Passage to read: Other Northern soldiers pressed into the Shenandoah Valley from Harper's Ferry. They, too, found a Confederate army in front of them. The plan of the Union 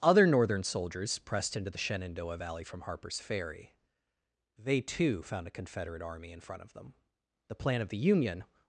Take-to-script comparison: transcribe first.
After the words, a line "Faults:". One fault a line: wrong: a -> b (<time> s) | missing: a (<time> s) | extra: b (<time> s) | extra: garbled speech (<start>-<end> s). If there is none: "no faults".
Other Northern soldiers pressed into the Shenandoah Valley from Harper's Ferry. They, too, found a Confederate army in front of them. The plan of the Union
Faults:
no faults